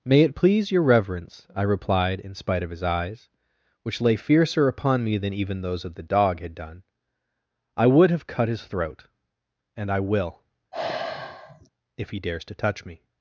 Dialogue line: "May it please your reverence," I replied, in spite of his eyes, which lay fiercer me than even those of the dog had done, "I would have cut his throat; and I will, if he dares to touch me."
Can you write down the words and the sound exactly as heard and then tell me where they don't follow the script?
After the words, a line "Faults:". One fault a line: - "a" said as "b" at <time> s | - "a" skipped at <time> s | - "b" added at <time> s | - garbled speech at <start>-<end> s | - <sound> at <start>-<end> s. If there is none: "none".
"May it please your reverence," I replied, in spite of his eyes, which lay fiercer upon me than even those of the dog had done, "I would have cut his throat; and I will, if he dares to touch me."
Faults:
- "upon" added at 4.7 s
- sigh at 10.7-11.7 s